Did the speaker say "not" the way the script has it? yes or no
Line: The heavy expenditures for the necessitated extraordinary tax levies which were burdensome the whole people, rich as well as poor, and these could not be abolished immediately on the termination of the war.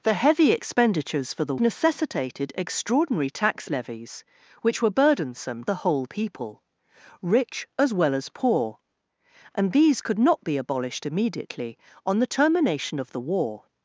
yes